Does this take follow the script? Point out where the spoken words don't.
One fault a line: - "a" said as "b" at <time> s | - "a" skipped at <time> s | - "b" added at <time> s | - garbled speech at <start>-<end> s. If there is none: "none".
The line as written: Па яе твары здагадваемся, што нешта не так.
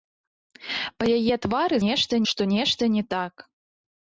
- "здагадваемся" said as "нешта" at 1.9 s